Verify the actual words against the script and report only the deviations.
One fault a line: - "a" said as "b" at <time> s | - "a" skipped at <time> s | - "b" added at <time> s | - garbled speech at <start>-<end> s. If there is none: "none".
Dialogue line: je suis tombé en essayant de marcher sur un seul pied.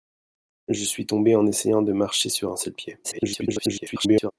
- garbled speech at 3.0-4.3 s